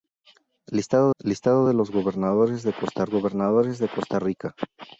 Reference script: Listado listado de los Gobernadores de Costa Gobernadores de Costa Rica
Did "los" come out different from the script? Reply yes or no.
no